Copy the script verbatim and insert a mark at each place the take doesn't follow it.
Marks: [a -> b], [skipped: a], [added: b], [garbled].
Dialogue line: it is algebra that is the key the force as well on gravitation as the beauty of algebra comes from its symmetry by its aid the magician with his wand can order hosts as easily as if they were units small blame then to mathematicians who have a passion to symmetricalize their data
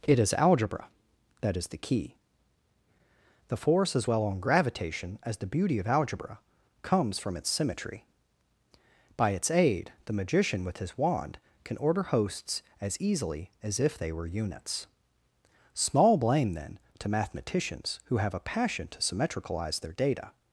it is algebra that is the key the force as well on gravitation as the beauty of algebra comes from its symmetry by its aid the magician with his wand can order hosts as easily as if they were units small blame then to mathematicians who have a passion to symmetricalize their data